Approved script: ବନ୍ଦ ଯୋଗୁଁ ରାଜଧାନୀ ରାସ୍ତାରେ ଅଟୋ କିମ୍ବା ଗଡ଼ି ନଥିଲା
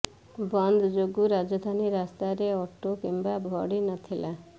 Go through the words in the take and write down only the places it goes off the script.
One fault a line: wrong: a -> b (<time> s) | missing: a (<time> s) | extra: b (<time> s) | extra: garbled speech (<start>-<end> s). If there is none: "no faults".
no faults